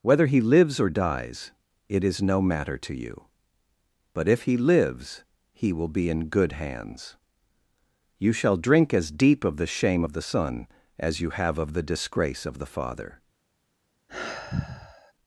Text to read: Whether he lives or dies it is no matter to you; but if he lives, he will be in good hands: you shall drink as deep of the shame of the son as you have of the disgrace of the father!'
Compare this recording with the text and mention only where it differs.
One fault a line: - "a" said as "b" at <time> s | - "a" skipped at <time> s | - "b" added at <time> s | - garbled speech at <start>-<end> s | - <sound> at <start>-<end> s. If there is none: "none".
- sigh at 14.1-15.1 s